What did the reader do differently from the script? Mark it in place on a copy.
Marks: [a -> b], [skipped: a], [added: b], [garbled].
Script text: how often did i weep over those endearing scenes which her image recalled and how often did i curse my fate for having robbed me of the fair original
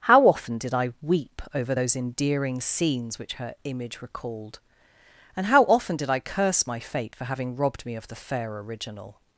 how often did i weep over those endearing scenes which her image recalled and how often did i curse my fate for having robbed me of the fair original